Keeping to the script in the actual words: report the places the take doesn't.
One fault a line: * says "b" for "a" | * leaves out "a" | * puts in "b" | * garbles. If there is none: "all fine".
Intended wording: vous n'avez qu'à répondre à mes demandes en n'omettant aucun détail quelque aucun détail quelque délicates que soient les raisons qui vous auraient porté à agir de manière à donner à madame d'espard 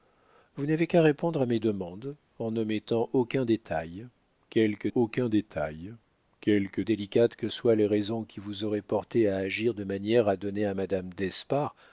all fine